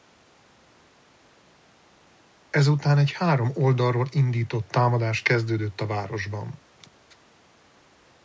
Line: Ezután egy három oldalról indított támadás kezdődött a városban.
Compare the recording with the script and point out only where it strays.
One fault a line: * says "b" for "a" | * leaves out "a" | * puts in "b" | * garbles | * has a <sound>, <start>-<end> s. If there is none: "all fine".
all fine